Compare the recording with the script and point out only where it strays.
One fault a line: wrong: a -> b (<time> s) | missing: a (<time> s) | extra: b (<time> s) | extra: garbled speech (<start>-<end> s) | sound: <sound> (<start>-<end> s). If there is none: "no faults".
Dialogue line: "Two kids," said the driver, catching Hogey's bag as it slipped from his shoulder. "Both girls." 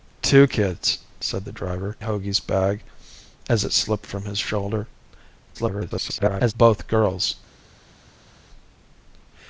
missing: catching (1.9 s)
extra: garbled speech (5.5-6.5 s)